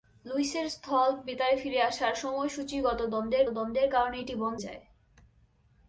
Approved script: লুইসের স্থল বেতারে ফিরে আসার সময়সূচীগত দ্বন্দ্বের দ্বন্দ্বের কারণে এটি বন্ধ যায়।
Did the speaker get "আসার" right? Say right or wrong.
right